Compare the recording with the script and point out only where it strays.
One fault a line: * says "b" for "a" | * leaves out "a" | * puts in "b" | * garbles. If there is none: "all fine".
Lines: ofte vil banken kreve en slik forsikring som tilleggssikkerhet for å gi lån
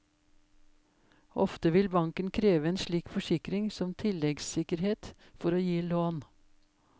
all fine